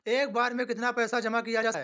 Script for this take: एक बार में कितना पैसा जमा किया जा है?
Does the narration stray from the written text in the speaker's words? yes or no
no